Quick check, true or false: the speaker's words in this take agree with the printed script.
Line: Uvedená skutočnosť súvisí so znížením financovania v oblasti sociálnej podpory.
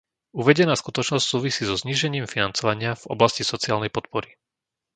true